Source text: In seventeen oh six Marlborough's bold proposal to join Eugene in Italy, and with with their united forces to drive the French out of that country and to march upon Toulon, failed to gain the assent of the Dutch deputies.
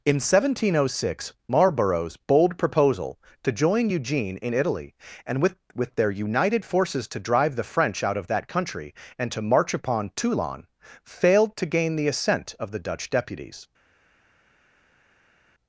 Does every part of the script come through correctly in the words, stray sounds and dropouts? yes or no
yes